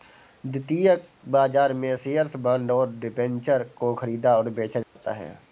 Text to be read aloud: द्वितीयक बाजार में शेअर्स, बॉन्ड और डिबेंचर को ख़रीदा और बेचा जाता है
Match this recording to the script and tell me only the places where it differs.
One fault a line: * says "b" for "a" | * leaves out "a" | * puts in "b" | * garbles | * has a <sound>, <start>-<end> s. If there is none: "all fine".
* has a dropout, 4.8-5.0 s